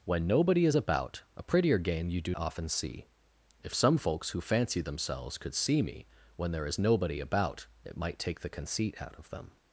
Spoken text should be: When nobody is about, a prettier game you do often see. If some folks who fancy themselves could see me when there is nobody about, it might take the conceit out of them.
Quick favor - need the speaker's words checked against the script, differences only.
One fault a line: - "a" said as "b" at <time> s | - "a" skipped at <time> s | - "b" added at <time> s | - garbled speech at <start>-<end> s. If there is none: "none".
none